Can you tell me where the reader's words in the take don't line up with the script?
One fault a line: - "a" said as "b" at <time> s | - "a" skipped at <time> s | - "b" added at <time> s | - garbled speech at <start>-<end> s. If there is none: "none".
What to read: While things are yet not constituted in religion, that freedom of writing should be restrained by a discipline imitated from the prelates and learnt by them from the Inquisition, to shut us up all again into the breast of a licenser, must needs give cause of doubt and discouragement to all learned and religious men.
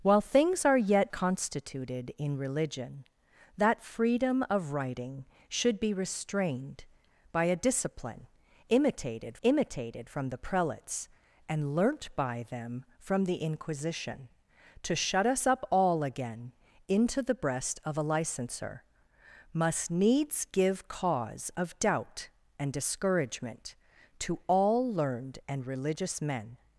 - "not" skipped at 1.1 s
- "imitated" added at 9.4 s